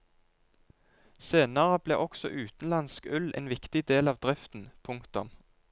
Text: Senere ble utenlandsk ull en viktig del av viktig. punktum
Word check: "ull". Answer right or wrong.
right